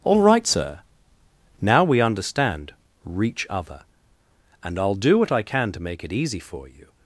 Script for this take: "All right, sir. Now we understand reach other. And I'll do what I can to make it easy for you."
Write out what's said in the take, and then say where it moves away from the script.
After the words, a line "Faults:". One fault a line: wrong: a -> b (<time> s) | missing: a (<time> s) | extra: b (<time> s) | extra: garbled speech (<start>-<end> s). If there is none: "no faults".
"All right, sir. Now we understand reach other. And I'll do what I can to make it easy for you."
Faults:
no faults